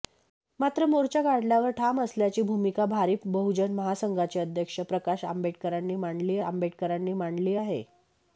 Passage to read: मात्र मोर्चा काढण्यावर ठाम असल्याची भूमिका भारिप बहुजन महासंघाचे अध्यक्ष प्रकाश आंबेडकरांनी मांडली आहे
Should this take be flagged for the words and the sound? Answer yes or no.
yes